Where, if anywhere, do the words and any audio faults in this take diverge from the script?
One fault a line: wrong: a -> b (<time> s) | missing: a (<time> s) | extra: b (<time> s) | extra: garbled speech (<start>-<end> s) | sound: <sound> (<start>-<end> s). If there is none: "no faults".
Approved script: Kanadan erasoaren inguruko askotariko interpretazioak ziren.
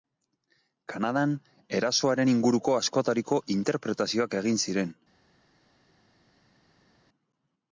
extra: egin (4.4 s)